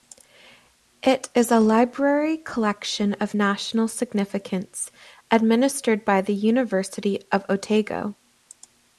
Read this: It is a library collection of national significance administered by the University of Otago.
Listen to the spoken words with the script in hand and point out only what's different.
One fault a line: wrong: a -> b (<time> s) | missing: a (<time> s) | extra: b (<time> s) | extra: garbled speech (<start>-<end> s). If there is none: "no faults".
no faults